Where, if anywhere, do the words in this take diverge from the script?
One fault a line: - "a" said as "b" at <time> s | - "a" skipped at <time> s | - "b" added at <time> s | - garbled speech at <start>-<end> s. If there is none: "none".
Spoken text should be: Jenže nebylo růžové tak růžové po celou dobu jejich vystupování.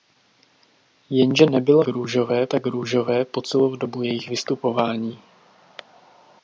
none